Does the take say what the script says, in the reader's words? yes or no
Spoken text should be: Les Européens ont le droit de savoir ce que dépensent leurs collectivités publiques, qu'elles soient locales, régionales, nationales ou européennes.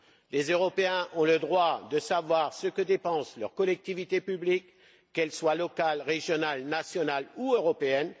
yes